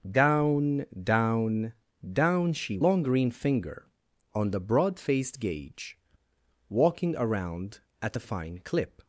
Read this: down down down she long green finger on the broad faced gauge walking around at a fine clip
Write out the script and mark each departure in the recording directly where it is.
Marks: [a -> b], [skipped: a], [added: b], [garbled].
down down down she long green finger on the broad faced gauge walking around at a fine clip